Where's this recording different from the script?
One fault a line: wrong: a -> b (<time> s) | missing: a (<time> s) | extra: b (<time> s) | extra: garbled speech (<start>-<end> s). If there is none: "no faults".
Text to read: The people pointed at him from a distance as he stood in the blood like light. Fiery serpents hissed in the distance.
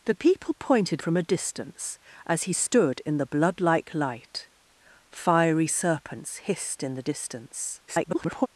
missing: at him (1.0 s)
extra: garbled speech (7.9-8.5 s)